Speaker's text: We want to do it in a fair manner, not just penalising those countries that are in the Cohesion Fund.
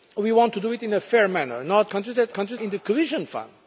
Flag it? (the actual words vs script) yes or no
yes